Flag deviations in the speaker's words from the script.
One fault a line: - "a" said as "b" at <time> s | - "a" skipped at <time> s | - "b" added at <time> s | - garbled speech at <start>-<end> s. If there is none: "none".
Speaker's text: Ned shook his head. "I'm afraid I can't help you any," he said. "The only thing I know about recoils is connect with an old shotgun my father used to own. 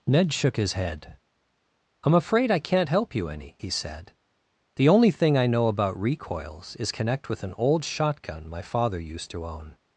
none